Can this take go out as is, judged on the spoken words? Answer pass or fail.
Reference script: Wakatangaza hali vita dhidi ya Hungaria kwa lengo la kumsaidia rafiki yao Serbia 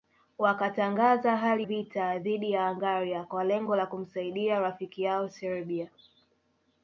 pass